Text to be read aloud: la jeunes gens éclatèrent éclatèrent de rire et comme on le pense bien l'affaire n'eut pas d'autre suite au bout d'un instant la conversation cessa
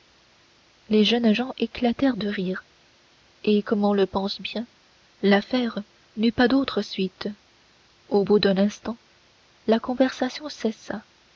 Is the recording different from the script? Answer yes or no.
yes